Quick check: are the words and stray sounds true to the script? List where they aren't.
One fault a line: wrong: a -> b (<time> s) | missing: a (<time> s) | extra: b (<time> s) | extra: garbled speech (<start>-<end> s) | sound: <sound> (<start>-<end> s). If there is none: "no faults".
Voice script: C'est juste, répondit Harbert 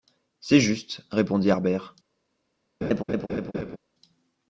sound: laugh (2.8-3.8 s)